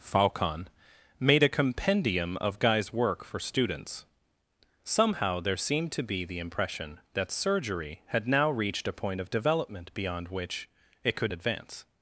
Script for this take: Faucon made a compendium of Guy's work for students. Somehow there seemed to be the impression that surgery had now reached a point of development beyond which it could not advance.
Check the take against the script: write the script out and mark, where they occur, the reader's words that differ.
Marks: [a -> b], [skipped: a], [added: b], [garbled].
Faucon made a compendium of Guy's work for students. Somehow there seemed to be the impression that surgery had now reached a point of development beyond which it could [skipped: not] advance.